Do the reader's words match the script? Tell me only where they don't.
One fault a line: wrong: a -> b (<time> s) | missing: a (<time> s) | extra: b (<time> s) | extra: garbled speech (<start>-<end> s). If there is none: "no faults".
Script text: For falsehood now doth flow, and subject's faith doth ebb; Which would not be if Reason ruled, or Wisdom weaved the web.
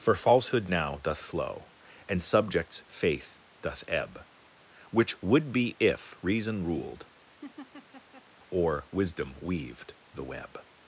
missing: not (5.5 s)